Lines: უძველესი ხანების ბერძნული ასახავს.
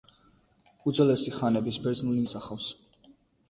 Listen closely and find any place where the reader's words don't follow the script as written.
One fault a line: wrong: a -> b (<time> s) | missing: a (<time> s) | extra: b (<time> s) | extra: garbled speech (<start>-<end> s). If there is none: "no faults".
no faults